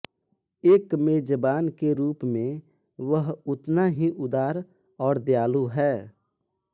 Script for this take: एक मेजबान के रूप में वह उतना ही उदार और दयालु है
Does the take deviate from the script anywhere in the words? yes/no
no